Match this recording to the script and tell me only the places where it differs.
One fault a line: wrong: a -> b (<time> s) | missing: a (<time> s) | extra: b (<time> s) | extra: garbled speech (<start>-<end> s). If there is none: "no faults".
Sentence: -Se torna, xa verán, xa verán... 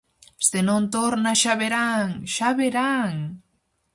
extra: non (0.7 s)